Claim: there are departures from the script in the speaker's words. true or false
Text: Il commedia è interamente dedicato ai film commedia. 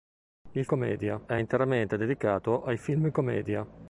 false